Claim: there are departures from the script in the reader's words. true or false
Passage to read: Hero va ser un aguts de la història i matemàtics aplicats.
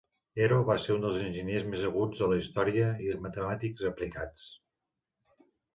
true